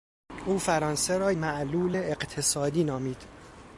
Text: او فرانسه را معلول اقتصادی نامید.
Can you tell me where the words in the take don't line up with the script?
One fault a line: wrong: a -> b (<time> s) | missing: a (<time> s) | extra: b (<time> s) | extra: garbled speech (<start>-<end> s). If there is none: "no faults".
no faults